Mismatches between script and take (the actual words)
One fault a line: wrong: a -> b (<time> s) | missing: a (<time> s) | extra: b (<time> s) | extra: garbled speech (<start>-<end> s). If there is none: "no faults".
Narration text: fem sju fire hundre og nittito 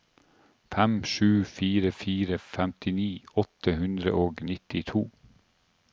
extra: fire femtini åtte (2.0 s)